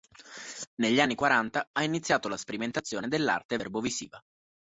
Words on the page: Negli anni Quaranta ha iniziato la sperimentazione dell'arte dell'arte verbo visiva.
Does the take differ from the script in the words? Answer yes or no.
yes